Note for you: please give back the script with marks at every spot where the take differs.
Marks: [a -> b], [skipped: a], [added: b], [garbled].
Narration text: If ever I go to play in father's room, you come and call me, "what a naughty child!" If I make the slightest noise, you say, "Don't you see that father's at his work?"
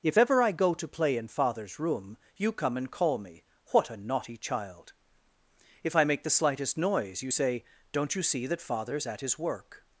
If ever I go to play in father's room, you come and call me, "what a naughty child!" If I make the slightest noise, you say, "Don't you see that father's at his work?"